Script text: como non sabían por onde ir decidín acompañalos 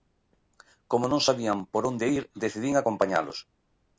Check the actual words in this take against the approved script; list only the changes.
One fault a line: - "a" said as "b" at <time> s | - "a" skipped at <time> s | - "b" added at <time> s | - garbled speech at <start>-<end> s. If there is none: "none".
none